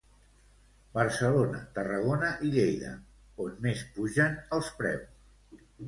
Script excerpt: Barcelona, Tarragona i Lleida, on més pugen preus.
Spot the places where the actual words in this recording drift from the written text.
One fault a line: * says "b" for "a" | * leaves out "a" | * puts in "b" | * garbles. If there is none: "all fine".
* puts in "els"